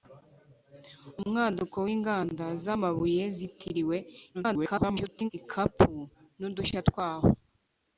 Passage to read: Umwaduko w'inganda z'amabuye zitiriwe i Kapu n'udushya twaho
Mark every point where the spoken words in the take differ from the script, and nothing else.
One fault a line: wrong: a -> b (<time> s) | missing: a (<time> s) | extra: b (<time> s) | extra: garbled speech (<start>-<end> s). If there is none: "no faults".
extra: garbled speech (4.3-5.3 s)